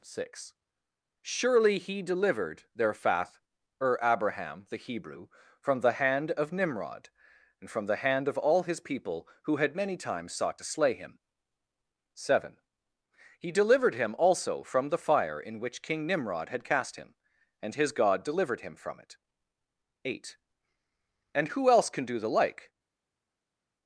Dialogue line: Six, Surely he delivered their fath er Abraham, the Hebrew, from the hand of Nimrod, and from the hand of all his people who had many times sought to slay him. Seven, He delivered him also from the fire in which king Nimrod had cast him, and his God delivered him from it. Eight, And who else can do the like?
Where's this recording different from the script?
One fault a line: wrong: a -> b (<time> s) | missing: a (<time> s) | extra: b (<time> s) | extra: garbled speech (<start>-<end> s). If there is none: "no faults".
no faults